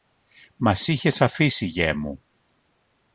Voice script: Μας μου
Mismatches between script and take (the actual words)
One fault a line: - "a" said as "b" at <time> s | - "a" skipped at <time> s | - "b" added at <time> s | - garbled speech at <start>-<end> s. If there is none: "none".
- "είχες αφήσει γιε" added at 0.9 s